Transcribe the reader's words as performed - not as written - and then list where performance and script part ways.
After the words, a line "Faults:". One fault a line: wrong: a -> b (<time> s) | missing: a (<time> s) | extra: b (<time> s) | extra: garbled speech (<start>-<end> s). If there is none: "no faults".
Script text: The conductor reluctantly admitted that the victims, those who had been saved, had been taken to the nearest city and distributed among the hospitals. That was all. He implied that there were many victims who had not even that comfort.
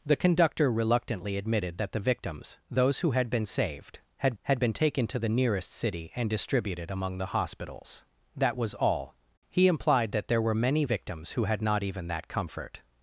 The conductor reluctantly admitted that the victims, those who had been saved, had had been taken to the nearest city and distributed among the hospitals. That was all. He implied that there were many victims who had not even that comfort.
Faults:
extra: had (4.4 s)